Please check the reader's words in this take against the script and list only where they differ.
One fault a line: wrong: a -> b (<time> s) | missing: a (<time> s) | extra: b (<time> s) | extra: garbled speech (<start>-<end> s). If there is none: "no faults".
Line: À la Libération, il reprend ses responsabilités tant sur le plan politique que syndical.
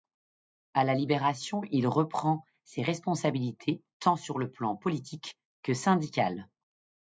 no faults